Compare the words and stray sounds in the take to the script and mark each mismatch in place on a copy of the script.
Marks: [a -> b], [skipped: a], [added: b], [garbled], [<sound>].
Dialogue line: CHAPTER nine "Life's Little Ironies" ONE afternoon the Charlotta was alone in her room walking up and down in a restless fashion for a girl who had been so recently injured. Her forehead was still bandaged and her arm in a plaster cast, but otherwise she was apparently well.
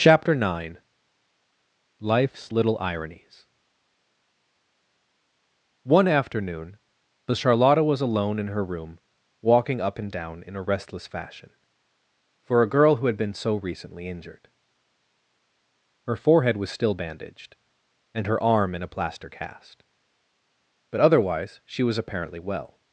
CHAPTER nine "Life's Little Ironies" ONE afternoon the Charlotta was alone in her room walking up and down in a restless fashion for a girl who had been so recently injured. Her forehead was still bandaged and her arm in a plaster cast, but otherwise she was apparently well.